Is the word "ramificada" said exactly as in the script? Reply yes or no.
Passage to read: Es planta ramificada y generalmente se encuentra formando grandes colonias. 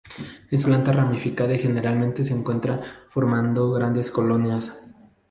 yes